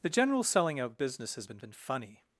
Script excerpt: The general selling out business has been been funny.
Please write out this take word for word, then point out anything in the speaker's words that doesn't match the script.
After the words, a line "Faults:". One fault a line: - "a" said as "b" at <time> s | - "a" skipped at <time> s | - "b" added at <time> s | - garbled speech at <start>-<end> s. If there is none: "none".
The general selling out business has been been funny.
Faults:
none